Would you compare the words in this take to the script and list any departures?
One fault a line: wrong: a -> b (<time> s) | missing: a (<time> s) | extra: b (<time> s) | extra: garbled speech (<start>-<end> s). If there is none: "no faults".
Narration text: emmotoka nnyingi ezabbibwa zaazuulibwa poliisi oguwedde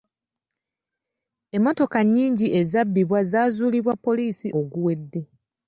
no faults